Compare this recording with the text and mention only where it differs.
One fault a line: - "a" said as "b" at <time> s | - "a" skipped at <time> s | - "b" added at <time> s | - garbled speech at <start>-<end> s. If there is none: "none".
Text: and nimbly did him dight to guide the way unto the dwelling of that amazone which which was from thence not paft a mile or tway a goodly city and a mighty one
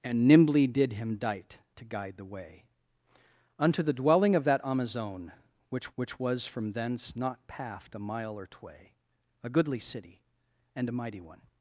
none